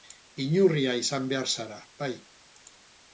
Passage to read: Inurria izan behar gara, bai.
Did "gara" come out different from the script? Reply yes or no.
yes